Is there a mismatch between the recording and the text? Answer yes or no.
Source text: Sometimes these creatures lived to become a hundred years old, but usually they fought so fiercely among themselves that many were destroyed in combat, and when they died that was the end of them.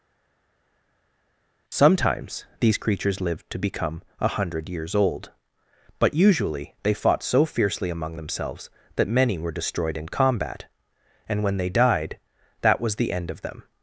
no